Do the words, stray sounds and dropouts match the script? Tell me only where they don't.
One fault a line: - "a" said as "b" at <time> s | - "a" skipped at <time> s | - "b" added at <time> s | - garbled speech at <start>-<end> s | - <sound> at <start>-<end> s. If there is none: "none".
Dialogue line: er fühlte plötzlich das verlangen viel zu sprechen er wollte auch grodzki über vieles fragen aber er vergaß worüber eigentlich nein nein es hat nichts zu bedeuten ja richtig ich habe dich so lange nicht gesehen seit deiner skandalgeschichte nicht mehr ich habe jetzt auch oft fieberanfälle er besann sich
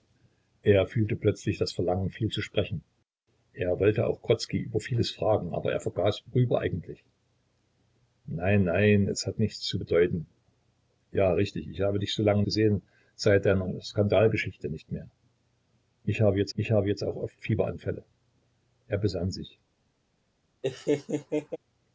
- "nicht" skipped at 12.4 s
- "ich habe jetzt" added at 16.5 s
- laugh at 20.6-21.6 s